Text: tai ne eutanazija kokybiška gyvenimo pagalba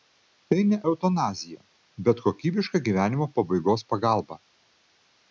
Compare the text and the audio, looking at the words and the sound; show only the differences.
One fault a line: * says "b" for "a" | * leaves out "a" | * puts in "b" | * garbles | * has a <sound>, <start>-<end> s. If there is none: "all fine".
* puts in "bet"
* puts in "pabaigos"